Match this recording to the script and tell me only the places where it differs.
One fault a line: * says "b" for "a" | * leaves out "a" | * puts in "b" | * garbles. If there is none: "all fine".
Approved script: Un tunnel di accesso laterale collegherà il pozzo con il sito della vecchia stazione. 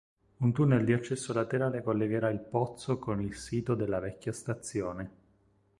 all fine